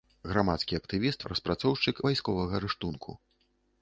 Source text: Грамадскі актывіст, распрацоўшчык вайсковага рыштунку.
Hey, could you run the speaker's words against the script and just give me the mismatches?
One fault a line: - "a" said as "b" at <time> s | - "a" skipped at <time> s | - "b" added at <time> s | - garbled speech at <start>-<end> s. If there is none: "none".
none